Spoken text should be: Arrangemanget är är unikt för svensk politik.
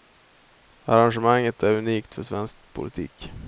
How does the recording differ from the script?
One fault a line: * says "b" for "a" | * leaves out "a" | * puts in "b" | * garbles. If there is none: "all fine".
* leaves out "är"